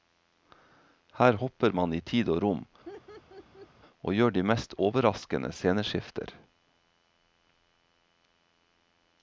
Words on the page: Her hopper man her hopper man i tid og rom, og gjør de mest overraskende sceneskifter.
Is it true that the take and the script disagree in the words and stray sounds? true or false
true